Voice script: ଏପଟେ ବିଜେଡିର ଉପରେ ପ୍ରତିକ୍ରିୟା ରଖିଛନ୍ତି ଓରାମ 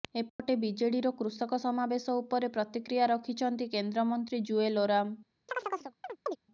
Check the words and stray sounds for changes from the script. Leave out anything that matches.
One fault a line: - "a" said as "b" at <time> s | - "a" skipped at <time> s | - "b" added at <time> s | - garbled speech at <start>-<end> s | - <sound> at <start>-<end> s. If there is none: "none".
- dropout at 0.3-0.4 s
- "କୃଷକ ସମାବେଶ" added at 1.2 s
- "କେନ୍ଦ୍ରମନ୍ତ୍ରୀ ଜୁଏଲ" added at 3.7 s
- chirp at 5.5-6.4 s